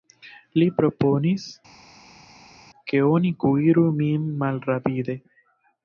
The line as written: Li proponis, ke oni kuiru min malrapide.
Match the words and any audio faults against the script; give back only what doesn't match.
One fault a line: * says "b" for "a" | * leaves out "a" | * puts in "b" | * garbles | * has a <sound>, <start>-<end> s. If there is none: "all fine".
all fine